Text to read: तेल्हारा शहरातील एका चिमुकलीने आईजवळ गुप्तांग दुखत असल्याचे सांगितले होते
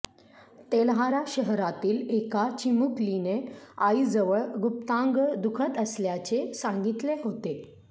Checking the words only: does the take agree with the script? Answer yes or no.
yes